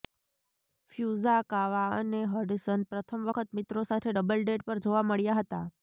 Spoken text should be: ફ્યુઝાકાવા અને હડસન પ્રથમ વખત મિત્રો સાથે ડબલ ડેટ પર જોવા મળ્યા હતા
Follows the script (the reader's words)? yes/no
yes